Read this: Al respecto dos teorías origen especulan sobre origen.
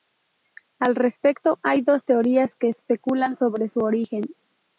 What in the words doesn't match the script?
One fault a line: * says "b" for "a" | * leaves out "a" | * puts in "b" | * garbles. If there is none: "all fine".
* puts in "hay"
* says "que" for "origen"
* puts in "su"